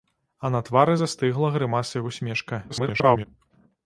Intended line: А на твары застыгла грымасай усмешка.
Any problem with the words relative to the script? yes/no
yes